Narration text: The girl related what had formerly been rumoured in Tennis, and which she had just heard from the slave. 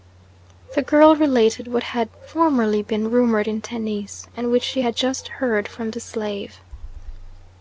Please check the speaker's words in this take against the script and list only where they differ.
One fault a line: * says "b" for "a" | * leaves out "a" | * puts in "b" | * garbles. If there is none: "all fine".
all fine